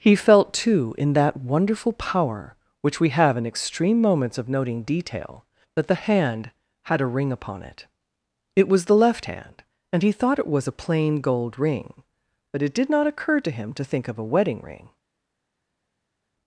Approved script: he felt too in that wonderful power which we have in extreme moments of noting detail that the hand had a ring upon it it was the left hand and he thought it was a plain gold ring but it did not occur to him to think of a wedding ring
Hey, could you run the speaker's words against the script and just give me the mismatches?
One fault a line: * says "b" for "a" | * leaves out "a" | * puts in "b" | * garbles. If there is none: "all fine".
all fine